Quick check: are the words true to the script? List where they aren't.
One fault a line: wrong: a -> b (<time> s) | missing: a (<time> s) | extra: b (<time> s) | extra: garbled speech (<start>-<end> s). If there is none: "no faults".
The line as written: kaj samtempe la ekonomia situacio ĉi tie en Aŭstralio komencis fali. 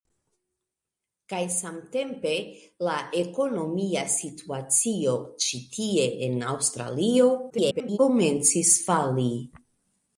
extra: garbled speech (7.5-8.0 s)